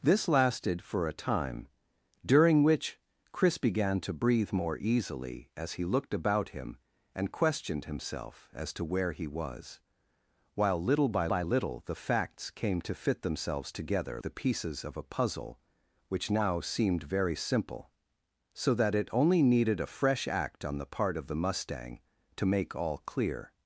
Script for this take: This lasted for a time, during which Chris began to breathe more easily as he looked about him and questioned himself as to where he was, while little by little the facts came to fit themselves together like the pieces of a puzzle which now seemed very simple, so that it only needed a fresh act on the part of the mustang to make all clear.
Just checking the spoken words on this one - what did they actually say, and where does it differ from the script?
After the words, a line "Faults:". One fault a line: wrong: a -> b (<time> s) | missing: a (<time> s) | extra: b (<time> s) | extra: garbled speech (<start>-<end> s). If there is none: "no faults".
This lasted for a time, during which Chris began to breathe more easily as he looked about him and questioned himself as to where he was, while little by by little the facts came to fit themselves together the pieces of a puzzle which now seemed very simple, so that it only needed a fresh act on the part of the mustang to make all clear.
Faults:
extra: by (11.3 s)
missing: like (14.2 s)